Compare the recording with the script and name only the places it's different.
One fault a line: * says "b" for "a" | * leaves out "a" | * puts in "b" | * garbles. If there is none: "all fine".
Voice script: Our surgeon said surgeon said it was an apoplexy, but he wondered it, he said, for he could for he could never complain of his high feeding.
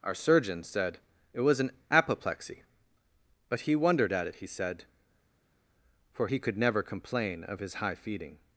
* leaves out "surgeon said"
* puts in "at"
* leaves out "for he could"